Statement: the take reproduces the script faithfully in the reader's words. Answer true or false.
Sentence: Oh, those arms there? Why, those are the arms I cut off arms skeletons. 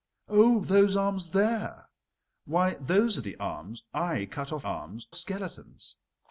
true